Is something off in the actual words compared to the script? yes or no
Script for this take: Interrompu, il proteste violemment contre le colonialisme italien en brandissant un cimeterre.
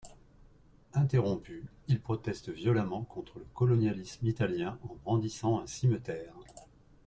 no